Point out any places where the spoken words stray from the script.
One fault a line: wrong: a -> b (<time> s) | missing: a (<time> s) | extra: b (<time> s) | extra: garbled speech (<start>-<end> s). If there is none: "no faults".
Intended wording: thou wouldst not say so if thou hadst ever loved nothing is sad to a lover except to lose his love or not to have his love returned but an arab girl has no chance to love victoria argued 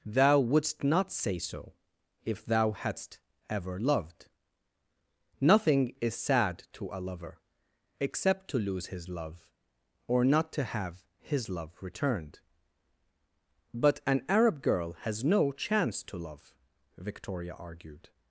no faults